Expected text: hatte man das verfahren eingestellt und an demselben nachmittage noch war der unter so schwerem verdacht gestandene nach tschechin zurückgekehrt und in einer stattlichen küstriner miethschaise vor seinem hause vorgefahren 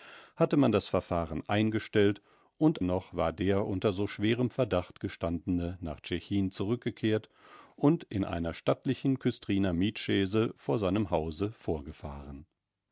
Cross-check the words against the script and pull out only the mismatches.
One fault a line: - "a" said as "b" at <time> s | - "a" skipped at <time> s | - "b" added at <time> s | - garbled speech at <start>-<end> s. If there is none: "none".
- "an demselben nachmittage" skipped at 2.8 s